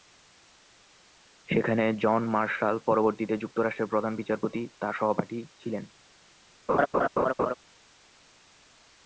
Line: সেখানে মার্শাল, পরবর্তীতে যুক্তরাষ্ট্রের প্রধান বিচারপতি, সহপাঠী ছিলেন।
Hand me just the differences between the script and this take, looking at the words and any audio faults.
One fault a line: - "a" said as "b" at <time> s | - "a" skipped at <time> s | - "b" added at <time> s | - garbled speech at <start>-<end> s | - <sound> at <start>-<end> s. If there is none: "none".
- "জন" added at 2.0 s
- "তার" added at 4.8 s
- laugh at 6.7-7.5 s